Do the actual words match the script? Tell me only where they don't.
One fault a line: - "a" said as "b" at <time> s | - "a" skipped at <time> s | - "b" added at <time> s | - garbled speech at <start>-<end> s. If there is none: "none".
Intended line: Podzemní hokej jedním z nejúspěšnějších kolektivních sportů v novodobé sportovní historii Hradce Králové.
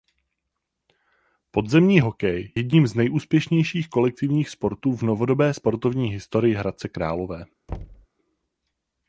none